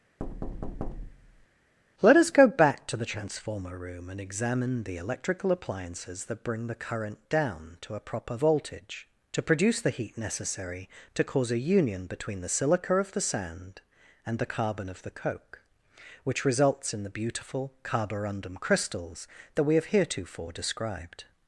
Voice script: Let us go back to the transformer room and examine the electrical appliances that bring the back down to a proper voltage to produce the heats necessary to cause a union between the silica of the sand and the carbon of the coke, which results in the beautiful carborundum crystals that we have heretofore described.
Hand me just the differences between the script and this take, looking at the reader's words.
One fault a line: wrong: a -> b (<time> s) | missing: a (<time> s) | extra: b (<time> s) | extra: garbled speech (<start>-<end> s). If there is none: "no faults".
wrong: back -> current (6.7 s)
wrong: heats -> heat (9.9 s)